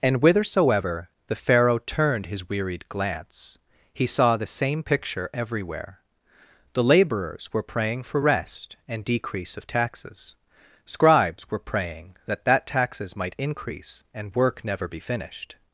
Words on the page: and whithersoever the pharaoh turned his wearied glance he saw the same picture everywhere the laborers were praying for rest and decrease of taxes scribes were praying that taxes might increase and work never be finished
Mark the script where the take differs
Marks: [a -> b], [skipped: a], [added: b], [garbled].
and whithersoever the pharaoh turned his wearied glance he saw the same picture everywhere the laborers were praying for rest and decrease of taxes scribes were praying that [added: that] taxes might increase and work never be finished